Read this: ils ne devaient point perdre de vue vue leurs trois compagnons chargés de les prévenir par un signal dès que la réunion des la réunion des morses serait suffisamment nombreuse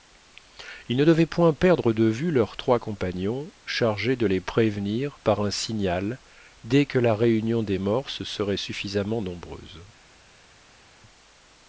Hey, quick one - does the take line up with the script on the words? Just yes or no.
no